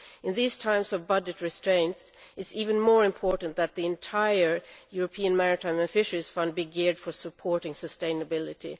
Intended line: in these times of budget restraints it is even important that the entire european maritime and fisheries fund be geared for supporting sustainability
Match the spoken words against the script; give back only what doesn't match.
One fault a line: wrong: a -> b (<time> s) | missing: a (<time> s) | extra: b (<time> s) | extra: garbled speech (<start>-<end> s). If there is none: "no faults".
extra: more (2.8 s)